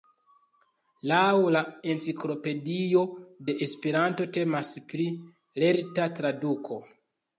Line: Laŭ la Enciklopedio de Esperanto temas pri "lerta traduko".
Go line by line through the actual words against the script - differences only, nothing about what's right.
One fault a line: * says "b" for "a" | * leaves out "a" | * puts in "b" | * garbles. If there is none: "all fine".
all fine